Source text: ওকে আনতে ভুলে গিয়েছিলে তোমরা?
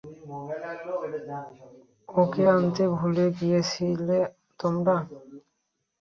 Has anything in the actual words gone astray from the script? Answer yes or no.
no